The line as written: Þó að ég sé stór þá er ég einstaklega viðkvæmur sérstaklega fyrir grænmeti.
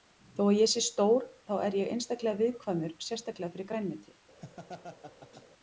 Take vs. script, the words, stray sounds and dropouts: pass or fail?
fail